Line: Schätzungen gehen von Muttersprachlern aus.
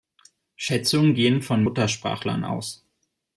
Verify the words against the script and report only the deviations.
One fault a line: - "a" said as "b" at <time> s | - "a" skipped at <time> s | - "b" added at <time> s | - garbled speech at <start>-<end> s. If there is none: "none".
none